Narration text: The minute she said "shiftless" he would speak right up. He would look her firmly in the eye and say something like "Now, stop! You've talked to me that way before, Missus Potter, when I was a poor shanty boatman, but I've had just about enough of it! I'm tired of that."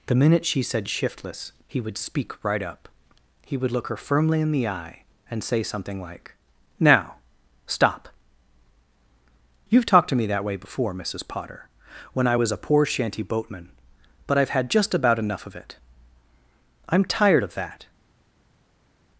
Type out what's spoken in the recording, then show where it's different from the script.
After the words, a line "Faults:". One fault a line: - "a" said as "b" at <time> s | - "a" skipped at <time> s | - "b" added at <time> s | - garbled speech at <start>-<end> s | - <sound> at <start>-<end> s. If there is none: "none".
The minute she said "shiftless" he would speak right up. He would look her firmly in the eye and say something like "Now, stop! You've talked to me that way before, Missus Potter, when I was a poor shanty boatman, but I've had just about enough of it! I'm tired of that."
Faults:
none